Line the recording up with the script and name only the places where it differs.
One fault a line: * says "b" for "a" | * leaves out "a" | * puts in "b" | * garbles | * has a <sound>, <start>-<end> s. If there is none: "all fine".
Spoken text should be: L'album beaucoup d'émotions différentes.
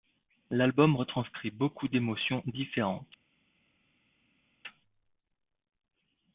* puts in "retranscrit"